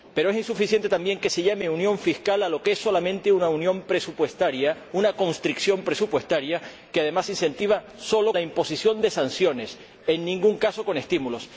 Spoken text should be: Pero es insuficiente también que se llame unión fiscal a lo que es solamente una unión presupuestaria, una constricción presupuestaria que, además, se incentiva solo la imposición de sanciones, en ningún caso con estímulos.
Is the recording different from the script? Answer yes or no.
no